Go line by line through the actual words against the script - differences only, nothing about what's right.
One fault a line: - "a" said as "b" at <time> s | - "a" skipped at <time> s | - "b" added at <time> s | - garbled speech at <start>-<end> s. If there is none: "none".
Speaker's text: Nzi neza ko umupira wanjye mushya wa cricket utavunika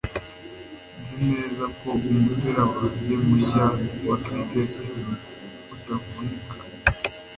none